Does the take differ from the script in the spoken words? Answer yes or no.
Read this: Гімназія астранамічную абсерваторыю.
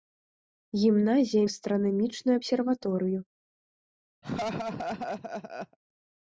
no